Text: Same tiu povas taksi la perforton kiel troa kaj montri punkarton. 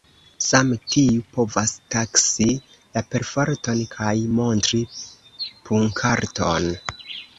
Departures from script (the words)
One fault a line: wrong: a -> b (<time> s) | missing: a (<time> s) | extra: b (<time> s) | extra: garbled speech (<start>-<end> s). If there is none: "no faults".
missing: kiel troa (3.8 s)